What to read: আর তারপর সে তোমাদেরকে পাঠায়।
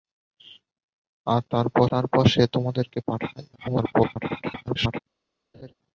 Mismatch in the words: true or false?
true